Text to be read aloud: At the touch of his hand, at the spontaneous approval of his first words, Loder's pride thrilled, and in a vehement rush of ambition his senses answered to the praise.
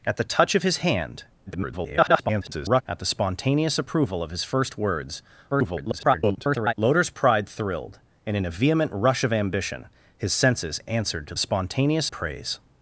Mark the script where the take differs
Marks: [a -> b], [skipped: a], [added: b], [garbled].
At the touch of his hand, [garbled] at the spontaneous approval of his first words, [garbled] Loder's pride thrilled, and in a vehement rush of ambition his senses answered to [the -> spontaneous] praise.